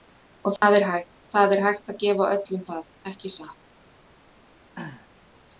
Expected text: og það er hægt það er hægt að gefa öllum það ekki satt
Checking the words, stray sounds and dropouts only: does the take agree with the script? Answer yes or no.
no